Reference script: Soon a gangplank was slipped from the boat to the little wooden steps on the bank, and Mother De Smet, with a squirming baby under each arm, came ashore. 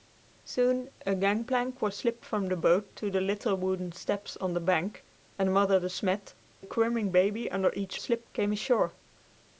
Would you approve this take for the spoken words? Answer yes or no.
no